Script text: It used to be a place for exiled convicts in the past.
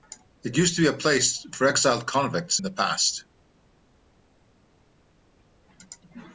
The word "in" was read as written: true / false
false